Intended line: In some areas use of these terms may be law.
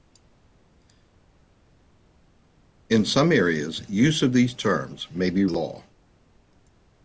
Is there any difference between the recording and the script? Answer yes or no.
no